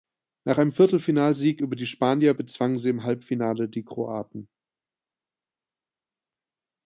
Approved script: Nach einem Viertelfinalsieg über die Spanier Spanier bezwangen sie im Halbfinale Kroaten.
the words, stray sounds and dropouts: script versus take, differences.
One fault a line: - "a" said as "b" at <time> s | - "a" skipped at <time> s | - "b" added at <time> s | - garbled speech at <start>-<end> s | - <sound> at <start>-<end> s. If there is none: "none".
- "Spanier" skipped at 2.3 s
- "die" added at 3.7 s